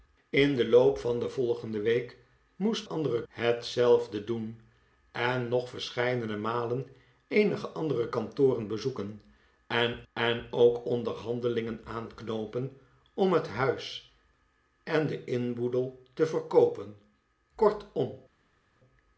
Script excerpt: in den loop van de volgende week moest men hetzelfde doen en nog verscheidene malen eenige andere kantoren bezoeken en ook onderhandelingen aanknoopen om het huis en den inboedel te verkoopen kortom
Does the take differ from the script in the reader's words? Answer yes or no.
yes